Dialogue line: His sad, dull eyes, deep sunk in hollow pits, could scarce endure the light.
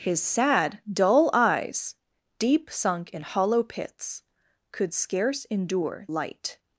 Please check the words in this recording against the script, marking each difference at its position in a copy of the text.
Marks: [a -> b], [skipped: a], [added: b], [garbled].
His sad, dull eyes, deep sunk in hollow pits, could scarce endure [skipped: the] light.